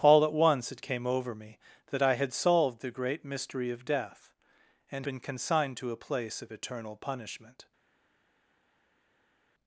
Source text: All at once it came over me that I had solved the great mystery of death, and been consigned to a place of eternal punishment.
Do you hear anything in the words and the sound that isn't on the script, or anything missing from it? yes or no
no